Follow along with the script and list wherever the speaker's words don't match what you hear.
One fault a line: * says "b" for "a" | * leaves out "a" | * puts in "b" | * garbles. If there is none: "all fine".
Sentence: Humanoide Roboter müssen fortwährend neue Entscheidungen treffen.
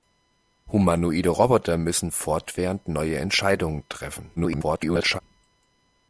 * garbles